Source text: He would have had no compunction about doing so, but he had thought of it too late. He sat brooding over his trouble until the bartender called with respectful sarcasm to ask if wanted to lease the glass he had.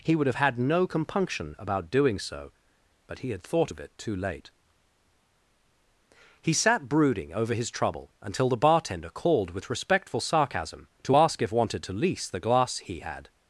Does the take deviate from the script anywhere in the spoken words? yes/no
no